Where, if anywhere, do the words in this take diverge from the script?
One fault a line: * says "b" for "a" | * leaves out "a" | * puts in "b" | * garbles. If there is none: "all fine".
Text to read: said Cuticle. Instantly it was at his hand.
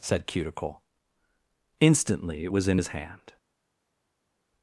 * says "in" for "at"